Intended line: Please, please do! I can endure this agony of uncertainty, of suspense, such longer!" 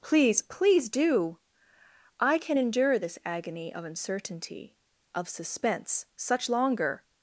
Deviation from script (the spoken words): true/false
false